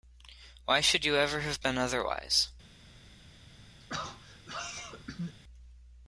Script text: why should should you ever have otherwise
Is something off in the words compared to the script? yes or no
yes